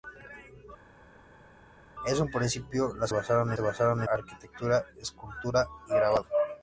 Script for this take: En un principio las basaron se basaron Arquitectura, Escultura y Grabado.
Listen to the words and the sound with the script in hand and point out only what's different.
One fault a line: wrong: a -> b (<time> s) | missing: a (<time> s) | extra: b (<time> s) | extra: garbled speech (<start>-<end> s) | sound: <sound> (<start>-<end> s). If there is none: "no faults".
no faults